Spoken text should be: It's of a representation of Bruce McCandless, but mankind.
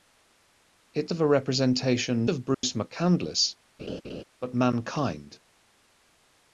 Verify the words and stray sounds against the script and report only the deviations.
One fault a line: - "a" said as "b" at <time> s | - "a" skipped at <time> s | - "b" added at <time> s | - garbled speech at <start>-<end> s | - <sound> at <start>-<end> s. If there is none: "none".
- dropout at 2.5-2.6 s
- laugh at 3.8-4.2 s